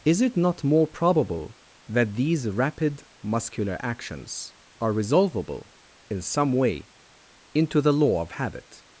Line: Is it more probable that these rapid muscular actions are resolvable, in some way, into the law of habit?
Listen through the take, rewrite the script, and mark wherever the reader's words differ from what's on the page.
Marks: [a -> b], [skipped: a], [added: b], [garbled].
Is it [added: not] more probable that these rapid muscular actions are resolvable, in some way, into the law of habit?